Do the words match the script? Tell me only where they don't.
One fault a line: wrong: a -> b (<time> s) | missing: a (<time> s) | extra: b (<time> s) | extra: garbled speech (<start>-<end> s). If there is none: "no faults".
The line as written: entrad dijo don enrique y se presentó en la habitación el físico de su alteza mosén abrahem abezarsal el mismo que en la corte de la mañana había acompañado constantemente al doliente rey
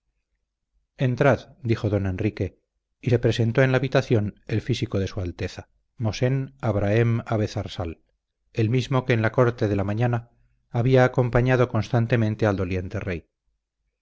no faults